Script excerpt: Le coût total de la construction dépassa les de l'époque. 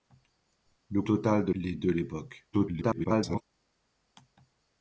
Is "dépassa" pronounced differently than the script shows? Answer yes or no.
yes